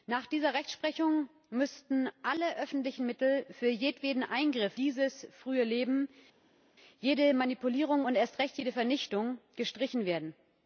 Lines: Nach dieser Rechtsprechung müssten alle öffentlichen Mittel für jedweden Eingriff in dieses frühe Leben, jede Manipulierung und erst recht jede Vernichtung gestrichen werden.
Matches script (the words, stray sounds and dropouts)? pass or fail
fail